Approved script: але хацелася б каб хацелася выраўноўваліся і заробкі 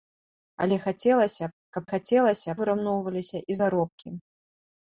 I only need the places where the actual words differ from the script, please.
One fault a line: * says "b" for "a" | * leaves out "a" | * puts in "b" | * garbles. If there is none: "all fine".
all fine